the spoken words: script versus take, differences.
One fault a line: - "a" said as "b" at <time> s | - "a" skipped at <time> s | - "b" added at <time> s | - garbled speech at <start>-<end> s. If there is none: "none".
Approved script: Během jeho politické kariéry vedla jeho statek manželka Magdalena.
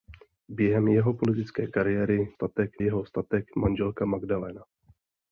- "vedla" said as "statek" at 2.3 s